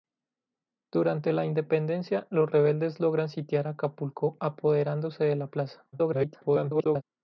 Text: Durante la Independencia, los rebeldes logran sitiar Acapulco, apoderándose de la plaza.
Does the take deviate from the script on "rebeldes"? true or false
false